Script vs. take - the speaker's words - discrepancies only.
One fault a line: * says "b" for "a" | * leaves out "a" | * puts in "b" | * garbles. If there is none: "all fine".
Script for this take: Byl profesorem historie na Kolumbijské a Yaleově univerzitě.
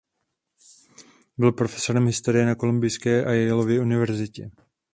all fine